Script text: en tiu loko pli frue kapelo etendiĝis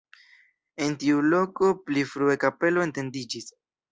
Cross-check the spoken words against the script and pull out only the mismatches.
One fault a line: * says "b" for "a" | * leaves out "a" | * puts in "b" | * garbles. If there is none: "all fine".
all fine